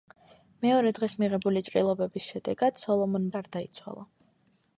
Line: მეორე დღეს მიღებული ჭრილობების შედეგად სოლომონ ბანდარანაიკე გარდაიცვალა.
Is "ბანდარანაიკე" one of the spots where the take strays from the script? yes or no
yes